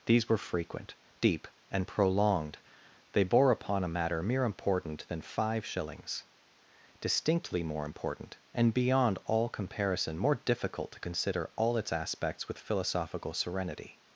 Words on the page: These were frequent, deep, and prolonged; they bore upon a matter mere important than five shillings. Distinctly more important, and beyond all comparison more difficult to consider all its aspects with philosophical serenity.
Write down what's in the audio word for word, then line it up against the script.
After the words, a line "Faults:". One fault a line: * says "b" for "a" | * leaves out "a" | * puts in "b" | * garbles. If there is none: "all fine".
These were frequent, deep, and prolonged; they bore upon a matter mere important than five shillings. Distinctly more important, and beyond all comparison more difficult to consider all its aspects with philosophical serenity.
Faults:
all fine